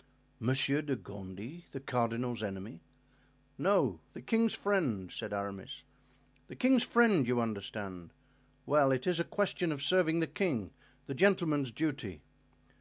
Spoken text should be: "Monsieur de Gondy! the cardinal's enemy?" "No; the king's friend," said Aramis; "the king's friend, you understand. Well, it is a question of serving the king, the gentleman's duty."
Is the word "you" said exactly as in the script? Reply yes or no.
yes